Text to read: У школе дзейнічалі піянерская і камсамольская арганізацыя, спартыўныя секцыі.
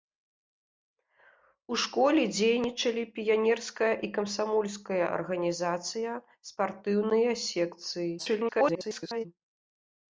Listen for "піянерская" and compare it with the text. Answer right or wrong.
right